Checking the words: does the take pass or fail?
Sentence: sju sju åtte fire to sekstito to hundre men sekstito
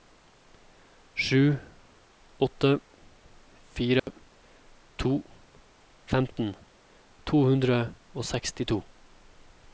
fail